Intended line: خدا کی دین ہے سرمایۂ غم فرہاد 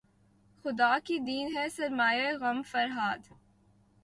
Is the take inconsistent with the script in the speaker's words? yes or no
no